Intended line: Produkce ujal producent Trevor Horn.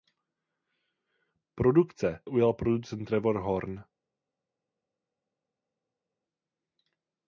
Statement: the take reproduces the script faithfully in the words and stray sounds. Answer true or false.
true